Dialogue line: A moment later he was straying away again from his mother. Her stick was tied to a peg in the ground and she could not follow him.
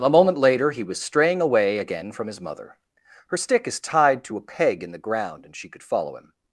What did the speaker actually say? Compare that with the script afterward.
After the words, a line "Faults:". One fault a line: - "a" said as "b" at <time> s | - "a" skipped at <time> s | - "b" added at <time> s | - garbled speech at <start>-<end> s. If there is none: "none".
A moment later he was straying away again from his mother. Her stick is tied to a peg in the ground and she could follow him.
Faults:
- "was" said as "is" at 3.7 s
- "not" skipped at 5.8 s